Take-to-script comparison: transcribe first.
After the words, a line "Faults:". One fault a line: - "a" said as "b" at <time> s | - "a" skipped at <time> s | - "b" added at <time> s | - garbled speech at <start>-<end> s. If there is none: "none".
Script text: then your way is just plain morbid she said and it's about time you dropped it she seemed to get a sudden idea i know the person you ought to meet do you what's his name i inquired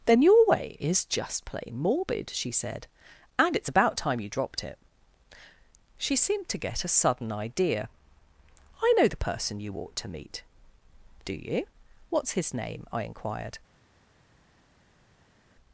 then your way is just plain morbid she said and it's about time you dropped it she seemed to get a sudden idea i know the person you ought to meet do you what's his name i inquired
Faults:
none